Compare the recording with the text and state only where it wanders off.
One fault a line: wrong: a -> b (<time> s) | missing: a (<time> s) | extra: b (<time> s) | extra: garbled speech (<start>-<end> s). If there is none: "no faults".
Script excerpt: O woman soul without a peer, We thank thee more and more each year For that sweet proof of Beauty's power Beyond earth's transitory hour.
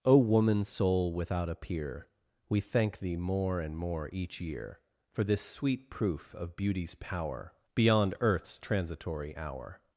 wrong: that -> this (5.2 s)